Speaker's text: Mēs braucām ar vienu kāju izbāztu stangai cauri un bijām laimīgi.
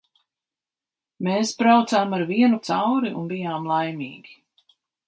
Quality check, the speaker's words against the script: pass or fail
fail